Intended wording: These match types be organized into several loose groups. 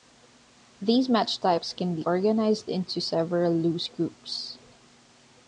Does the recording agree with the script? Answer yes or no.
no